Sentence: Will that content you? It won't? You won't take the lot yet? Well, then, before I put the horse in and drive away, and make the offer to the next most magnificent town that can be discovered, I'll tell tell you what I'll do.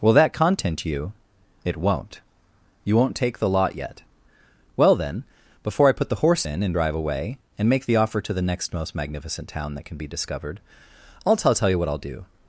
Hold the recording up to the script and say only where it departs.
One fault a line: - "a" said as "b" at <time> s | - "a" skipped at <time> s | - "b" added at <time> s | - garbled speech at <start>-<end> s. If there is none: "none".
none